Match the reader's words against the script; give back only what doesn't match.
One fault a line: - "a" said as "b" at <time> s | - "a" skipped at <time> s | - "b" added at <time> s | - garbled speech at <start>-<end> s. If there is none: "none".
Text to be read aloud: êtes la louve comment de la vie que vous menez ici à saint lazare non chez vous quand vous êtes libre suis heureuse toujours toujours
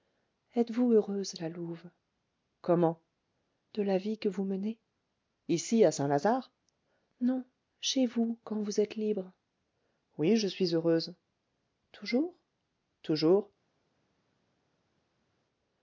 - "vous heureuse" added at 0.7 s
- "oui je" added at 10.2 s